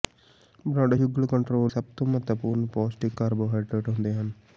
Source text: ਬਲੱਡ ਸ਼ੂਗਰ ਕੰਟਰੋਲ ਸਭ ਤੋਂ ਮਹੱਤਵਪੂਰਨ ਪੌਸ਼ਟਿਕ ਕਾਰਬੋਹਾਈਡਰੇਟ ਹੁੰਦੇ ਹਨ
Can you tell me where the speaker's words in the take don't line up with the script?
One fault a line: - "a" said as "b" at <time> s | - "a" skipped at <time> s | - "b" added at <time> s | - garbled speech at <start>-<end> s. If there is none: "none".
none